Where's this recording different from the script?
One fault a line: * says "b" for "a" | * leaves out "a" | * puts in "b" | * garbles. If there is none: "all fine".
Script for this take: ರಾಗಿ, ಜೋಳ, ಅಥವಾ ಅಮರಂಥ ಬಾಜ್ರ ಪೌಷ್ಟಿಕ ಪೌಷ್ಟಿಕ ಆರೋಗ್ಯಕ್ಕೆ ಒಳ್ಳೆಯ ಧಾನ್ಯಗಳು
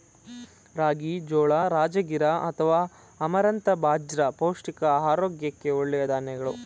* puts in "ರಾಜಗಿರಾ"
* leaves out "ಪೌಷ್ಟಿಕ"